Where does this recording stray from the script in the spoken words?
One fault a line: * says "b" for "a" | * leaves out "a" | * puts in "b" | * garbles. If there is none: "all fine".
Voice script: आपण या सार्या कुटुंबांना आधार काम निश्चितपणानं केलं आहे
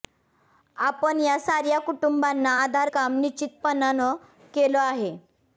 all fine